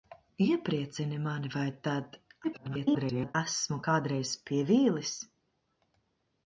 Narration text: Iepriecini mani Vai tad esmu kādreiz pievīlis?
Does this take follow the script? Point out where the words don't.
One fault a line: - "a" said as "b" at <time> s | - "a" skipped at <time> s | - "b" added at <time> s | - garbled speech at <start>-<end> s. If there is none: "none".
- garbled speech at 2.4-3.4 s